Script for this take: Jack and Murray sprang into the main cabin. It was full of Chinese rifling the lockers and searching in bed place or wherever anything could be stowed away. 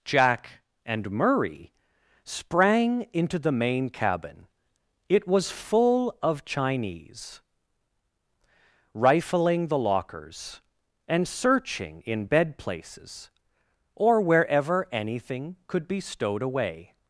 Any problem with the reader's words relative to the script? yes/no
yes